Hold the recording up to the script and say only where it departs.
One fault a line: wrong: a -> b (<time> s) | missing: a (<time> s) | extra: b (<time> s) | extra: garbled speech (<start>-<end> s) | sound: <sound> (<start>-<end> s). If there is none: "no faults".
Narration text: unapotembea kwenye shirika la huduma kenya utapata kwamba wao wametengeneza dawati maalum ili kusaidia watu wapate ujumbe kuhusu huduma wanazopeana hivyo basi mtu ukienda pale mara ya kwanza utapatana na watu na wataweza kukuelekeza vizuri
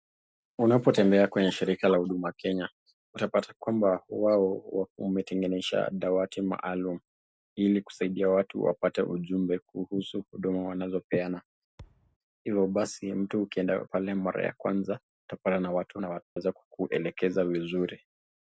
sound: thud (11.8-12.2 s)
sound: dropout (16.2-16.4 s)